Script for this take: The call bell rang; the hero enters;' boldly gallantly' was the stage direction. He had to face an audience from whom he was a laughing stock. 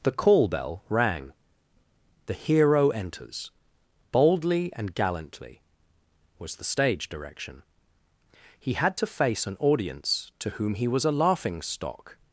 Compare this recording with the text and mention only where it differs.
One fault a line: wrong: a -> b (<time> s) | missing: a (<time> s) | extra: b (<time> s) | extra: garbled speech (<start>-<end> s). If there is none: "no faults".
extra: and (4.8 s)
wrong: from -> to (10.4 s)